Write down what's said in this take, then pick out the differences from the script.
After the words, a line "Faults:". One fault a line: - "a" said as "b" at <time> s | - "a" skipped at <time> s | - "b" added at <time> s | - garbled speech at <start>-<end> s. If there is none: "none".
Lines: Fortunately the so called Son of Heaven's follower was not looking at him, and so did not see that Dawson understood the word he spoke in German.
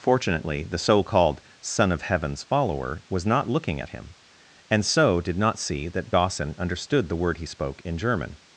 Fortunately the so called Son of Heaven's follower was not looking at him, and so did not see that Dawson understood the word he spoke in German.
Faults:
none